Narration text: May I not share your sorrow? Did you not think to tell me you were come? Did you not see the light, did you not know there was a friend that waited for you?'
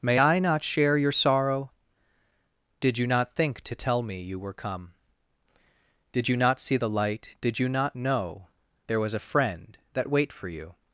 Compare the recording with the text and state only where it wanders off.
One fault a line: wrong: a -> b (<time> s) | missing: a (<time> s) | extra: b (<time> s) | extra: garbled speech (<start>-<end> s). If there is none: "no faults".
wrong: waited -> wait (10.1 s)